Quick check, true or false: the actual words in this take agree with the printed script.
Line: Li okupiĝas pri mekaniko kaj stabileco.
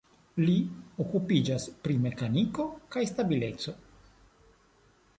true